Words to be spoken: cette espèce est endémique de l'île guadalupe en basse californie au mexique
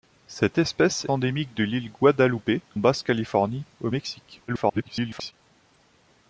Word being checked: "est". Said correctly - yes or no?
no